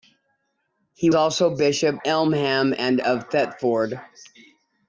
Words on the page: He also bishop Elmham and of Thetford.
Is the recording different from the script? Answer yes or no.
no